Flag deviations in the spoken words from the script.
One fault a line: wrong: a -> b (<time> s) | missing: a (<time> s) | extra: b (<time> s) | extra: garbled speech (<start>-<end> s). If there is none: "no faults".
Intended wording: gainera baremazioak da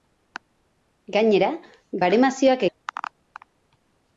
no faults